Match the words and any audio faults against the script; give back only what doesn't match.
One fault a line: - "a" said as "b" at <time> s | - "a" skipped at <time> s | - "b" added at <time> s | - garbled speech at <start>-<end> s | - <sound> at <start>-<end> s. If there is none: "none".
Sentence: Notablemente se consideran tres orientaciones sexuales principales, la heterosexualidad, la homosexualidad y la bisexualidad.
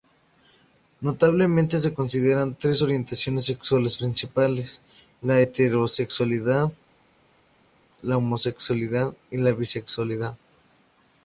none